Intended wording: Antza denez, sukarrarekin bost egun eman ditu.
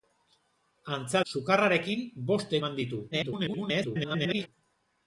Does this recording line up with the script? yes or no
no